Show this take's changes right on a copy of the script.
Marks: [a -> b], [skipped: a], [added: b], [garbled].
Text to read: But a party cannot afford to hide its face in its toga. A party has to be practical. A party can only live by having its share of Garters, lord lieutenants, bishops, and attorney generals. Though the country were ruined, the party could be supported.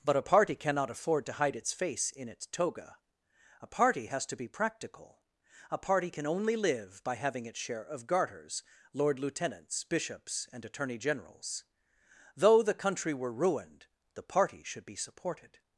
But a party cannot afford to hide its face in its toga. A party has to be practical. A party can only live by having its share of Garters, lord lieutenants, bishops, and attorney generals. Though the country were ruined, the party [could -> should] be supported.